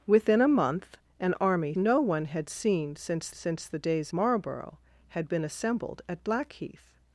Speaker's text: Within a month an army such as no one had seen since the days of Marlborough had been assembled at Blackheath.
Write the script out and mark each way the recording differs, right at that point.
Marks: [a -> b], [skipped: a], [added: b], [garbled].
Within a month an army [skipped: such as] no one had seen since [added: since] the days [skipped: of] Marlborough had been assembled at Blackheath.